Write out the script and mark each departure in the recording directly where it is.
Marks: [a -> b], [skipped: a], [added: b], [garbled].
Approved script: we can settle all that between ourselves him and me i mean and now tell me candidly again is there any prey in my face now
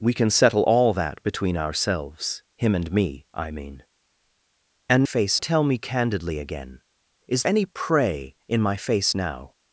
we can settle all that between ourselves him and me i mean and [now -> face] tell me candidly again is [skipped: there] any prey in my face now